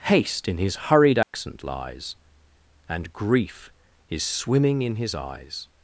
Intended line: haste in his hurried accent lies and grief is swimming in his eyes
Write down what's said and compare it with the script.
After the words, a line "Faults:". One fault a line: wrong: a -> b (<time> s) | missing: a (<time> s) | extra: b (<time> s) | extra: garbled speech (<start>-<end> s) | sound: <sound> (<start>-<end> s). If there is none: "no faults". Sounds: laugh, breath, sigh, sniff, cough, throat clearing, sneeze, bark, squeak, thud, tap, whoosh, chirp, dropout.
haste in his hurried accent lies and grief is swimming in his eyes
Faults:
sound: dropout (1.2-1.3 s)